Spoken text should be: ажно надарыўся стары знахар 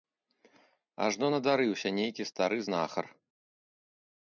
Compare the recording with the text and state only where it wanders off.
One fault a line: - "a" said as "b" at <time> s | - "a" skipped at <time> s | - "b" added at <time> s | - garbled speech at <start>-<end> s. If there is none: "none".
- "нейкі" added at 2.0 s